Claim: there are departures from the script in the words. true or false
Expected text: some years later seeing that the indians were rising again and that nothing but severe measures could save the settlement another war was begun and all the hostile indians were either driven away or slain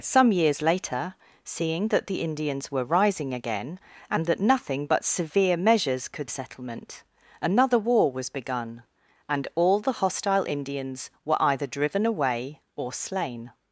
true